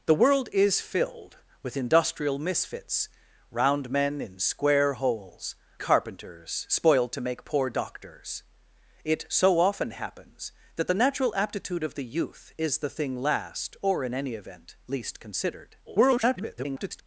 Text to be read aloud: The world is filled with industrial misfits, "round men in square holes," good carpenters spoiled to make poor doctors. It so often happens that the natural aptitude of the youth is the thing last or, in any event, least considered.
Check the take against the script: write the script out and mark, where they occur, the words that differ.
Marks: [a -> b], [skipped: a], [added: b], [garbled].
The world is filled with industrial misfits, "round men in square holes," [skipped: good] carpenters spoiled to make poor doctors. It so often happens that the natural aptitude of the youth is the thing last or, in any event, least considered. [garbled]